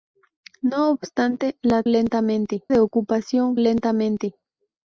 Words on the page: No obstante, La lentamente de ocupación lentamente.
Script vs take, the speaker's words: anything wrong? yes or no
no